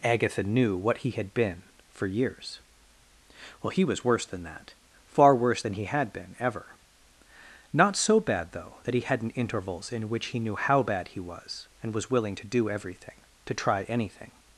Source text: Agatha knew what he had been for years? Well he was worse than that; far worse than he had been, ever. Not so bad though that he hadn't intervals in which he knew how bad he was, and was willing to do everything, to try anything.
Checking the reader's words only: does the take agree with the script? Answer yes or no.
yes